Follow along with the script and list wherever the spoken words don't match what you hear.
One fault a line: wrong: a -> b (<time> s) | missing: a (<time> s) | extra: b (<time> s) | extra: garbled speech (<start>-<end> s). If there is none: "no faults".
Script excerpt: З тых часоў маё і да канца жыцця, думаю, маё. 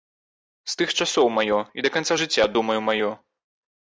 no faults